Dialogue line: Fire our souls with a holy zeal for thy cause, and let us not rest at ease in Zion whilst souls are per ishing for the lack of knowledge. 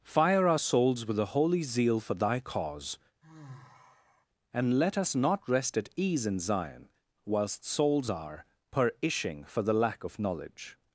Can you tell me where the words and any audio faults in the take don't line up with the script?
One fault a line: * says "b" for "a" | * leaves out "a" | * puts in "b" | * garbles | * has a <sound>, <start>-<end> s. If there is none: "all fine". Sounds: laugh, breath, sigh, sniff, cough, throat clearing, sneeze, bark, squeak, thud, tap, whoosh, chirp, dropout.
* has a sigh, 3.2-4.3 s